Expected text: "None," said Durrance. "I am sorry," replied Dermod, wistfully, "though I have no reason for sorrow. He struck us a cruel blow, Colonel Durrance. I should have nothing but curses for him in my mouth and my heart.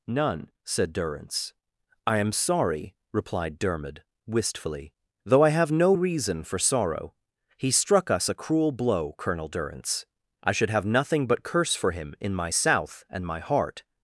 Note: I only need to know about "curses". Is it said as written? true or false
false